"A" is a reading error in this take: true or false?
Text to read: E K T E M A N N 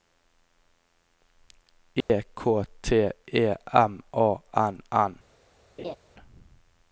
false